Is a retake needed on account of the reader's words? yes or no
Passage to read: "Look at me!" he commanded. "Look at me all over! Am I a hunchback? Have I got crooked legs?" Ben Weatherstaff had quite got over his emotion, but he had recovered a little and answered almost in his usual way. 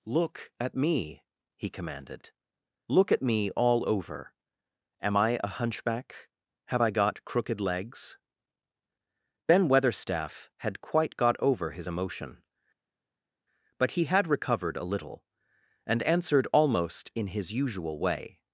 no